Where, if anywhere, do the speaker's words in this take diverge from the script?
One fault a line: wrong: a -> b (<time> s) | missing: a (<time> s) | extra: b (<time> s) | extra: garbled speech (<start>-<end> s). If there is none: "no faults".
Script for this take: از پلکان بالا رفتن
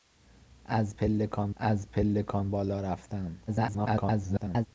extra: از پلکان (1.6 s)
extra: garbled speech (3.5-4.7 s)